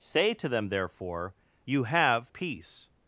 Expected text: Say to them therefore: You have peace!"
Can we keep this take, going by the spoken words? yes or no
yes